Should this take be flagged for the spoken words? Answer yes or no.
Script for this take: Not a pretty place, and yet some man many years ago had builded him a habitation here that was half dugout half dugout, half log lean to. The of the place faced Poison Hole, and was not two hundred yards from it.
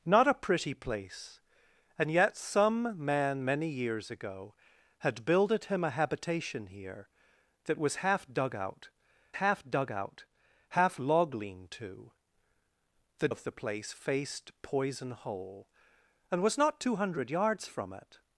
no